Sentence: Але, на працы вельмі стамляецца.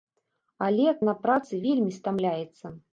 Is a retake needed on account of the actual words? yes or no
no